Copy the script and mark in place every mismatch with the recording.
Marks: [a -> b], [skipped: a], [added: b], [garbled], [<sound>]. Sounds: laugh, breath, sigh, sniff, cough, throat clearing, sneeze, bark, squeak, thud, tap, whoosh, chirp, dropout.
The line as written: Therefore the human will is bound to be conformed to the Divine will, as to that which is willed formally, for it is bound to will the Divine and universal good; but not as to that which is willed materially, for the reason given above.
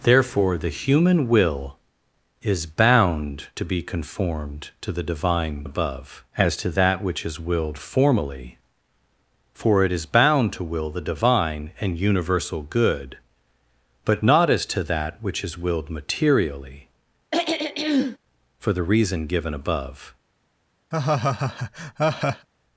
Therefore the human will is bound to be conformed to the Divine [will, -> above] as to that which is willed formally, for it is bound to will the Divine and universal good; but not as to that which is willed materially, [throat clearing] for the reason given above. [laugh]